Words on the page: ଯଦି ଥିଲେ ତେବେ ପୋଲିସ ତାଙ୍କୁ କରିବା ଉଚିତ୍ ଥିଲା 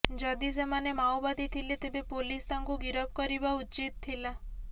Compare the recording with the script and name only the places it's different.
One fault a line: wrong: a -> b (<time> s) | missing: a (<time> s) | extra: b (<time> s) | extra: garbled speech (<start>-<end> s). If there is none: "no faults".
extra: ସେମାନେ ମାଓବାଦୀ (0.5 s)
extra: ଗିରଫ (2.8 s)